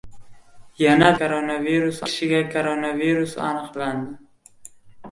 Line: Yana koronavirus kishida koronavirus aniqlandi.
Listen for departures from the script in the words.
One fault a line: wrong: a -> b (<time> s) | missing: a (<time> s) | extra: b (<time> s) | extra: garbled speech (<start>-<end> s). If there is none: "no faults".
no faults